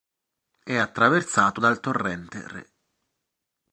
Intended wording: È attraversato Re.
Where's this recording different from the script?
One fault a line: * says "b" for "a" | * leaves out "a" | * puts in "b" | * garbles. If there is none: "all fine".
* puts in "dal torrente"